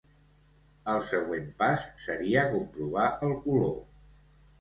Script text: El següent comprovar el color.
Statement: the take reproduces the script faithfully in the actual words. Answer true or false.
false